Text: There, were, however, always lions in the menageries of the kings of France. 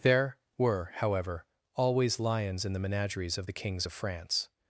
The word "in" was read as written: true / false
true